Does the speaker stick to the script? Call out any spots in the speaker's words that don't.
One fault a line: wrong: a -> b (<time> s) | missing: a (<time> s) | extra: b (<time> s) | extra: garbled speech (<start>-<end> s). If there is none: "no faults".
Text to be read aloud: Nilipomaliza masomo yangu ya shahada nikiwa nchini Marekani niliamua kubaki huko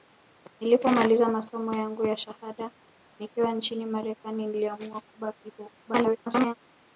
extra: garbled speech (5.9-6.5 s)